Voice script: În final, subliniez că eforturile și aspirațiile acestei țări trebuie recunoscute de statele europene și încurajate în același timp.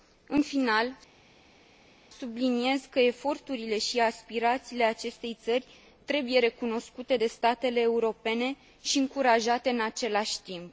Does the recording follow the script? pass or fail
pass